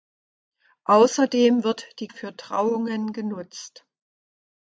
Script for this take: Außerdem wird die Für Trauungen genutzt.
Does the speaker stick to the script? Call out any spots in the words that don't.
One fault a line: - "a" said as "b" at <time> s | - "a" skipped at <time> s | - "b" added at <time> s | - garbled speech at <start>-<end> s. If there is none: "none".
none